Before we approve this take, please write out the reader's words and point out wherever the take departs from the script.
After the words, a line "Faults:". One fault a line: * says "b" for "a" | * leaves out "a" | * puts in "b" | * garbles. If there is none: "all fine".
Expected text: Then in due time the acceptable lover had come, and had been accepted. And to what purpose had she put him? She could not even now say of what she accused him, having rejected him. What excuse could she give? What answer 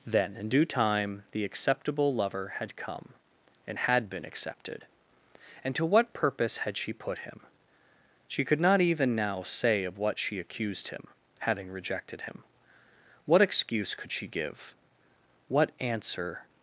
Then in due time the acceptable lover had come, and had been accepted. And to what purpose had she put him? She could not even now say of what she accused him, having rejected him. What excuse could she give? What answer
Faults:
all fine